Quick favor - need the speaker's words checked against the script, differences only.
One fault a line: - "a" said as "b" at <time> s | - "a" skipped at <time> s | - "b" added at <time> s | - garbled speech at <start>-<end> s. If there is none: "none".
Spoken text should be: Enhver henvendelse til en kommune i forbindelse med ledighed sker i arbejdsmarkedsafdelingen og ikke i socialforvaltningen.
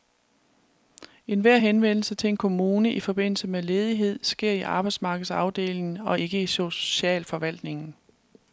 none